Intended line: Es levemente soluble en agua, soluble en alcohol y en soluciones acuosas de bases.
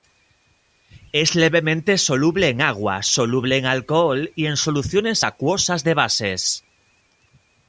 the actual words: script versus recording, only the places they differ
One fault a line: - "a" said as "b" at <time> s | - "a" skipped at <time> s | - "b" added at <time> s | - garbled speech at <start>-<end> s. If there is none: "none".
none